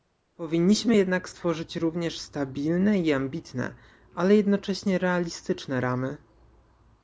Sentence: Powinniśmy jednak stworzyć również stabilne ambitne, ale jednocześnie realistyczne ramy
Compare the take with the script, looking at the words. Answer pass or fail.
fail